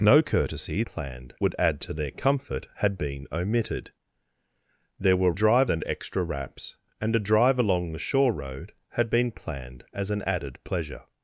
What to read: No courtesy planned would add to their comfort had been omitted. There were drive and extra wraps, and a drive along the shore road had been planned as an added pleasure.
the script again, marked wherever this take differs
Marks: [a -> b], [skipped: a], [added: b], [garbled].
No courtesy planned would add to their comfort had been omitted. There were drive and extra wraps, and a drive along the shore road had been planned as an added pleasure.